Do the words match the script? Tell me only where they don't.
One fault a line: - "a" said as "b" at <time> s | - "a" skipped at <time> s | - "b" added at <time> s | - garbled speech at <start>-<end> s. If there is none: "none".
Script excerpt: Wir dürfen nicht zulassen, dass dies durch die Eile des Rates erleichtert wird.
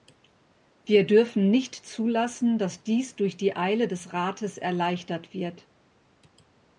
none